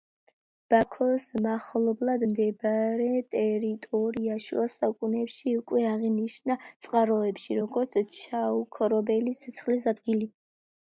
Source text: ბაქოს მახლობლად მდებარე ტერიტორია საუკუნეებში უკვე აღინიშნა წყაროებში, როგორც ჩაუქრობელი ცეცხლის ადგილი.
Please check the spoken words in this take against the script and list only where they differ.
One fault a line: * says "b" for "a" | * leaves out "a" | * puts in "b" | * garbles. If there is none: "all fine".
* puts in "შუა"